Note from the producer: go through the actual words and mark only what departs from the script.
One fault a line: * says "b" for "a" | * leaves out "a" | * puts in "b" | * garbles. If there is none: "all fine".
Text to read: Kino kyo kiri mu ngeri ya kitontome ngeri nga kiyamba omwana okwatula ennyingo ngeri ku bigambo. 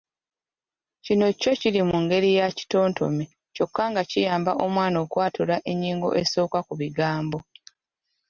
* says "kyokka" for "ngeri"
* says "esooka" for "ngeri"